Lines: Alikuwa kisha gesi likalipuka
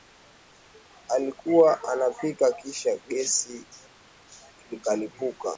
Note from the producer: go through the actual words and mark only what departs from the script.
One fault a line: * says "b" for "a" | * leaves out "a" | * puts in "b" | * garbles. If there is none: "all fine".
* puts in "anapika"